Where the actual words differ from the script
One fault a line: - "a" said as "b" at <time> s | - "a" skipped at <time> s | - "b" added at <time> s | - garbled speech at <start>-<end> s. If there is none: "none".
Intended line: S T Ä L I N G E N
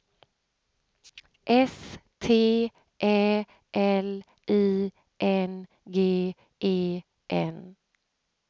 none